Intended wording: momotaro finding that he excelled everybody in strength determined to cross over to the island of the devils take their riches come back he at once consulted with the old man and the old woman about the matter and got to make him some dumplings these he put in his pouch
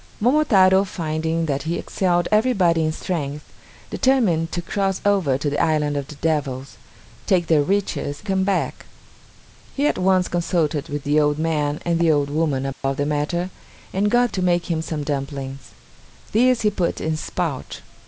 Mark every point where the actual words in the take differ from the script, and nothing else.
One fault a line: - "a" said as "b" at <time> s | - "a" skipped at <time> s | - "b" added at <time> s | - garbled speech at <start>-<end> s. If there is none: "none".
none